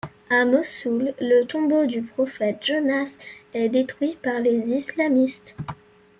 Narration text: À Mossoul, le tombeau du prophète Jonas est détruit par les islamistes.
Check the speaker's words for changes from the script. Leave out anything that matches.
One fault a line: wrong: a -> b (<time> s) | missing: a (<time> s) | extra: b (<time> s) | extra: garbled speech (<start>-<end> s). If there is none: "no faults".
no faults